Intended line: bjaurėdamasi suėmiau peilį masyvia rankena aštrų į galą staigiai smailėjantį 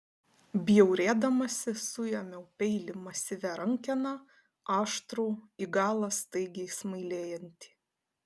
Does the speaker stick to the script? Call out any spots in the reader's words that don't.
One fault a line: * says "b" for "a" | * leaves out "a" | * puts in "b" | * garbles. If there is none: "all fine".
all fine